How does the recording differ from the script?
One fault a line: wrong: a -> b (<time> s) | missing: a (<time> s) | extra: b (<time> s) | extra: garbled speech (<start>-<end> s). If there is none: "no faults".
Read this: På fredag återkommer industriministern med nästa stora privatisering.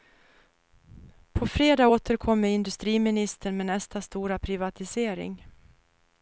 no faults